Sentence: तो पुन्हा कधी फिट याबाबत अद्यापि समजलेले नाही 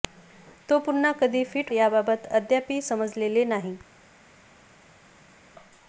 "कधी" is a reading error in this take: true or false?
false